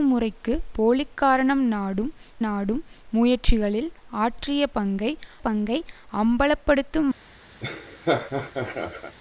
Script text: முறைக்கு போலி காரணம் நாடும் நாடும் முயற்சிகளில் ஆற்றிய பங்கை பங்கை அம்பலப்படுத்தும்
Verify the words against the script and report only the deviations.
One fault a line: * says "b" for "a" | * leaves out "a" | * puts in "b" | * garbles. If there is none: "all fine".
all fine